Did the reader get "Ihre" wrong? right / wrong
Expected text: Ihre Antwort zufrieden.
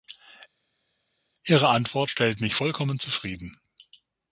right